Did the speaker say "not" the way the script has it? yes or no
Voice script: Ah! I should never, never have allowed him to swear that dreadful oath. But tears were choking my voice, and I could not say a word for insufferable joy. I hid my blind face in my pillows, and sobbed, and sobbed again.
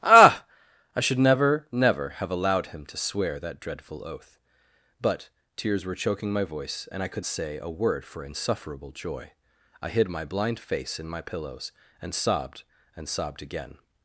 no